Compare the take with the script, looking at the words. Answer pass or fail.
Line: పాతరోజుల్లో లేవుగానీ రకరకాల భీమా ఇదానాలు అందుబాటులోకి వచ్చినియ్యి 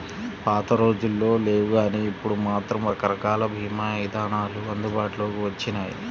fail